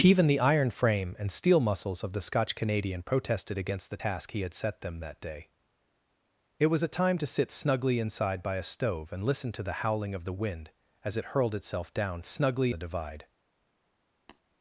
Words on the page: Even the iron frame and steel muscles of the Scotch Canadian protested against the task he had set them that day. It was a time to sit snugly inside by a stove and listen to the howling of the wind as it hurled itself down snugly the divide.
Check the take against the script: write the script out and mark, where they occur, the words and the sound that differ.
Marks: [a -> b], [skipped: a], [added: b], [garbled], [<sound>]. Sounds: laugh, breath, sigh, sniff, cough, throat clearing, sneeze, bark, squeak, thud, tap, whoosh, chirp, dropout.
Even the iron frame and steel muscles of the Scotch Canadian protested against the task he had set them that day. It was a time to sit snugly inside by a stove and listen to the howling of the wind as it hurled itself down snugly the divide. [tap]